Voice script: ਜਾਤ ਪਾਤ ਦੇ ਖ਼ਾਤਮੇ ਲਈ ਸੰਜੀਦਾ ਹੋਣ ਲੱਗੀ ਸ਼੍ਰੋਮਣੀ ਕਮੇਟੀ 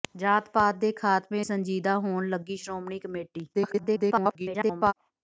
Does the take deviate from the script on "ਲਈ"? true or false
true